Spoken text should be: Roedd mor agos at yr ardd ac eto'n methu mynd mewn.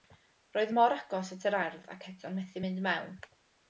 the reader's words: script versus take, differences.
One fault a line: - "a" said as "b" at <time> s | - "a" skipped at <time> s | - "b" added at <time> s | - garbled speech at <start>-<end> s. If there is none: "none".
none